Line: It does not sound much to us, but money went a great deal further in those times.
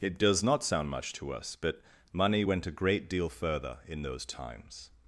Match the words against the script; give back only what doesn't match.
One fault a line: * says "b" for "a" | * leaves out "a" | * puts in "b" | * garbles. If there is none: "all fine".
all fine